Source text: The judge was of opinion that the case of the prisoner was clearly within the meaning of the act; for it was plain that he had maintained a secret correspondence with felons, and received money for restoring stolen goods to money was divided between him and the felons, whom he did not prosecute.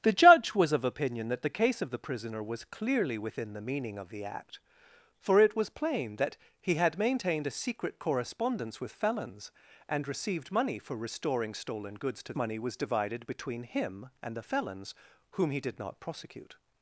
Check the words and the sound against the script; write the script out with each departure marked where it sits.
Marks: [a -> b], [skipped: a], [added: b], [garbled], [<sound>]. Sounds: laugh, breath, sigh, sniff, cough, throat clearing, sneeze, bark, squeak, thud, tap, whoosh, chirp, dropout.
The judge was of opinion that the case of the prisoner was clearly within the meaning of the act; for it was plain that he had maintained a secret correspondence with felons, and received money for restoring stolen goods to money was divided between him and the felons, whom he did not prosecute.